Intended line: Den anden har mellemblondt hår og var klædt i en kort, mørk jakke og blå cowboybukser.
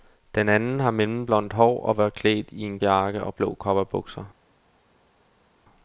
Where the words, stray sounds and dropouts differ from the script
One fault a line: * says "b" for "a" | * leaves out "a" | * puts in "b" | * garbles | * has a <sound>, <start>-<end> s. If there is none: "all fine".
* leaves out "kort mørk"